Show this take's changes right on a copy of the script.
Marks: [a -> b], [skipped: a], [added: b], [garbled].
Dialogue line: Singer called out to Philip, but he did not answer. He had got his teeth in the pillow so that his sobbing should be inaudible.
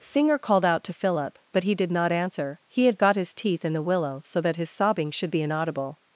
Singer called out to Philip, but he did not answer. He had got his teeth in the [pillow -> willow] so that his sobbing should be inaudible.